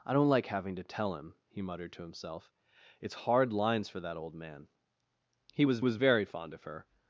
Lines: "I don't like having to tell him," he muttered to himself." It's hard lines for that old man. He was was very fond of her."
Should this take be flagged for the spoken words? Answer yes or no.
no